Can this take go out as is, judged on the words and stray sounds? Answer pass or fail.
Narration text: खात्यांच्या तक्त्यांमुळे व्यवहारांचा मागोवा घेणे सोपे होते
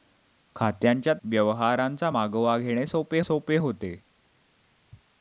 fail